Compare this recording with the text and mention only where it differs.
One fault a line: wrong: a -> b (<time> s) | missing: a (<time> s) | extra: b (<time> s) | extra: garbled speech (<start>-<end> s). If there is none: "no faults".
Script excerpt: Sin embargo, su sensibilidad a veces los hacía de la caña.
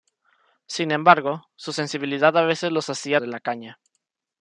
no faults